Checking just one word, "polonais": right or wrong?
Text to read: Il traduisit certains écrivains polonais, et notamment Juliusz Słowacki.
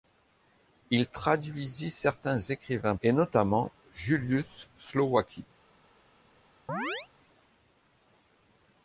wrong